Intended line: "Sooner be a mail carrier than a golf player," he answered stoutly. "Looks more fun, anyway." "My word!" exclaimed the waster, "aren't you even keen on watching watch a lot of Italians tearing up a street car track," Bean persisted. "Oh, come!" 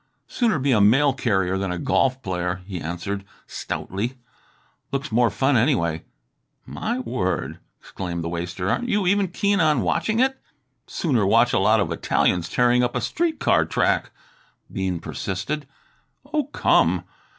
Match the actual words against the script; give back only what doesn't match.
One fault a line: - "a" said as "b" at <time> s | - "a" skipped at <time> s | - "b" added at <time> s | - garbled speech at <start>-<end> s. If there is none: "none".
- "it Sooner" added at 10.2 s